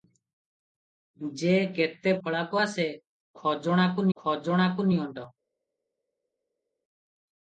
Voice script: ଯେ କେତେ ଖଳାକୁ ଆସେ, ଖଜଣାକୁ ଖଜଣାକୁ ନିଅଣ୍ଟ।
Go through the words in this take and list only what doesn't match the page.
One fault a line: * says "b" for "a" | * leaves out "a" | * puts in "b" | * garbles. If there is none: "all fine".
all fine